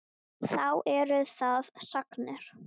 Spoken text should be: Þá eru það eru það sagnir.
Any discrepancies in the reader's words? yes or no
yes